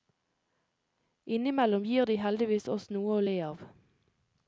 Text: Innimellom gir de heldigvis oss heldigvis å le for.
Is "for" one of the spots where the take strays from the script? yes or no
yes